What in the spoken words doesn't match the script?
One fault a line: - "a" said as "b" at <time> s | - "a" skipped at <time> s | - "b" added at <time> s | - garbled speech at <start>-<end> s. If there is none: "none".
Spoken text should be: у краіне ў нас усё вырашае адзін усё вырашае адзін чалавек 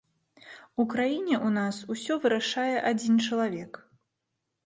- "усё вырашае адзін" skipped at 3.2 s